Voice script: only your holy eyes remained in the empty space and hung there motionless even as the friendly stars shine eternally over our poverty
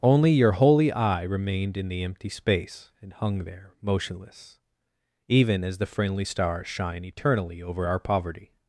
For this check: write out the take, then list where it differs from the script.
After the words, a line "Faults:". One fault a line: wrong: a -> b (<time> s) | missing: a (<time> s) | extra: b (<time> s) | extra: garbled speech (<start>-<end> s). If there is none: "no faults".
only your holy eye remained in the empty space and hung there motionless even as the friendly stars shine eternally over our poverty
Faults:
wrong: eyes -> eye (0.9 s)